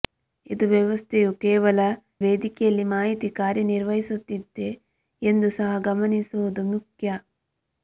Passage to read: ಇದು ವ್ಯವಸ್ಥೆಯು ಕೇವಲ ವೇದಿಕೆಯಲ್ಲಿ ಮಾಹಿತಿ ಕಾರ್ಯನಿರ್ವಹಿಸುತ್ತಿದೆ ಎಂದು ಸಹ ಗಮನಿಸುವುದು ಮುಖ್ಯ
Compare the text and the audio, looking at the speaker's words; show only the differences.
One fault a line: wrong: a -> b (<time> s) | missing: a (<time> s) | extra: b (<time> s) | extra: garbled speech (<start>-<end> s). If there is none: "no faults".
no faults